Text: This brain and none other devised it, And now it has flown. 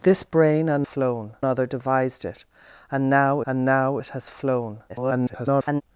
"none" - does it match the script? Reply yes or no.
no